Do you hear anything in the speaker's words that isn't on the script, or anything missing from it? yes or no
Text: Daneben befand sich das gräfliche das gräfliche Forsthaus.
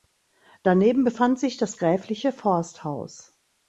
yes